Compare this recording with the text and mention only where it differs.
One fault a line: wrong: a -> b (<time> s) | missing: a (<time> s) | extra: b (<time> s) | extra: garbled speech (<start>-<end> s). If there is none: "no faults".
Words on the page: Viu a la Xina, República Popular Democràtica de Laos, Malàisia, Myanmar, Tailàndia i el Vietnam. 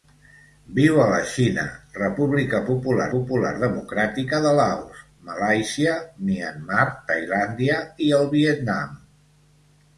extra: Popular (3.1 s)